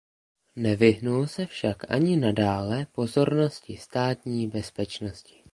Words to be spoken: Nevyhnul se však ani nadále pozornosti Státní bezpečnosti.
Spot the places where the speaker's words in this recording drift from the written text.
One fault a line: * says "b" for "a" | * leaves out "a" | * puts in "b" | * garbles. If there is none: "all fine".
all fine